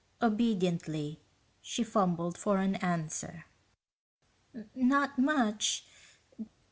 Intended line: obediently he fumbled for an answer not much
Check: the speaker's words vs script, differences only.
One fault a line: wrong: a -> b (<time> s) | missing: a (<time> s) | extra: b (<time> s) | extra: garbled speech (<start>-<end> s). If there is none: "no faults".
wrong: he -> she (1.6 s)